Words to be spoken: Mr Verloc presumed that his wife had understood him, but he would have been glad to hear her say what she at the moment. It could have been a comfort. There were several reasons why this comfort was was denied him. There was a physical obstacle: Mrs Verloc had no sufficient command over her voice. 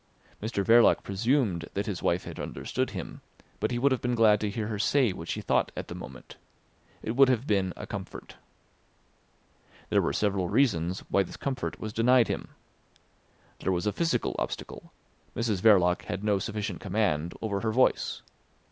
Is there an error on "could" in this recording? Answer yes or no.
yes